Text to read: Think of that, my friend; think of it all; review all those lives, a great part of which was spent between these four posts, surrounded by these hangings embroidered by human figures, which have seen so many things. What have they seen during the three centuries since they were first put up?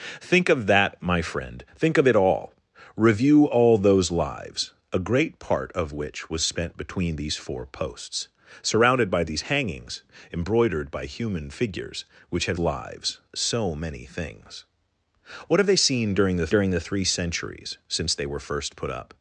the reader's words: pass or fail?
fail